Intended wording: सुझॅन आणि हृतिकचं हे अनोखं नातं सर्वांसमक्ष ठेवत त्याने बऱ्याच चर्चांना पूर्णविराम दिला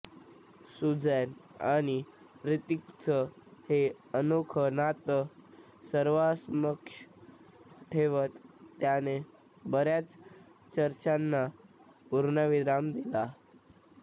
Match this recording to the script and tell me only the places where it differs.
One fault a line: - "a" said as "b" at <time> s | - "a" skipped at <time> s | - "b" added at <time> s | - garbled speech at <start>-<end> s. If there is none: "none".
none